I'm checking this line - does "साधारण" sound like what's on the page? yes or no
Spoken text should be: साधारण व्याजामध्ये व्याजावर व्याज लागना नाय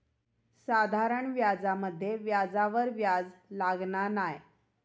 yes